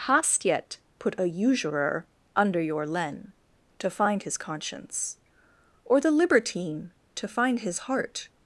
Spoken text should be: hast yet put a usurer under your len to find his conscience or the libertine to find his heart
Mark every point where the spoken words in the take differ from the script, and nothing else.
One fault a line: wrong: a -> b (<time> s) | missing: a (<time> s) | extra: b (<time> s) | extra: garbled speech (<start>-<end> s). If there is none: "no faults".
no faults